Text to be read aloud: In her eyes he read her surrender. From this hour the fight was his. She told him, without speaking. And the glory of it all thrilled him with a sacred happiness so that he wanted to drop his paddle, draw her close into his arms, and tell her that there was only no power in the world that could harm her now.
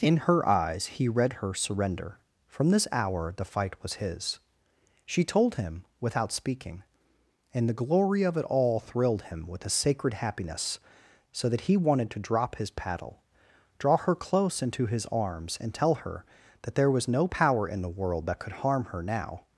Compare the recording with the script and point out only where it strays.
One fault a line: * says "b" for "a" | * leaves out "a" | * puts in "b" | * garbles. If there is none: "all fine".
* leaves out "only"